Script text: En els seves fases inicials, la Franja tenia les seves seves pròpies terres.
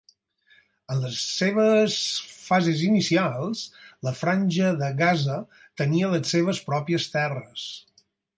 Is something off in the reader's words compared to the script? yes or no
yes